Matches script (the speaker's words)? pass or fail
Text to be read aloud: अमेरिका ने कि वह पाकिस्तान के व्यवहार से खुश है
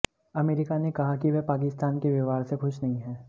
fail